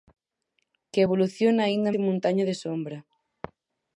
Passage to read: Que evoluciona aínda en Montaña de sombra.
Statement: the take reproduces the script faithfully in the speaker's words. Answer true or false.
true